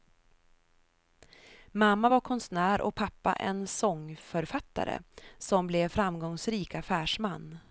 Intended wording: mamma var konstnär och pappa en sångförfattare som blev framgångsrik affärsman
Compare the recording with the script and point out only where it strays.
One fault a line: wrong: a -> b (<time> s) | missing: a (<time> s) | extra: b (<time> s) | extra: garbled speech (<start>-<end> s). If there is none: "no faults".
no faults